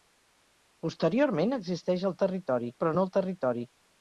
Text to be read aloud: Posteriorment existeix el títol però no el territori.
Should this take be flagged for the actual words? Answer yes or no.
yes